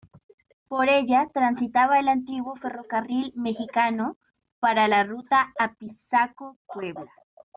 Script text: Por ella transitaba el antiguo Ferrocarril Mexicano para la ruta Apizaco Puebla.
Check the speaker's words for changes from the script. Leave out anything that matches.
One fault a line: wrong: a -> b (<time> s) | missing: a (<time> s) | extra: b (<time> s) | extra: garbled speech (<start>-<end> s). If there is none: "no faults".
no faults